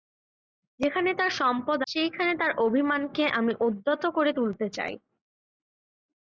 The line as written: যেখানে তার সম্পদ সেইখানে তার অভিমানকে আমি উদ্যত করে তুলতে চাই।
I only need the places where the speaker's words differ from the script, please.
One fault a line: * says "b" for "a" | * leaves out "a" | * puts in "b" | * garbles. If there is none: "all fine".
all fine